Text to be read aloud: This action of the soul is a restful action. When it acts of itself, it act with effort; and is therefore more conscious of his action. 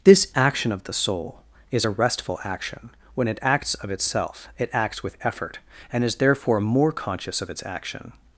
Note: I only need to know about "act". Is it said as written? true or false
false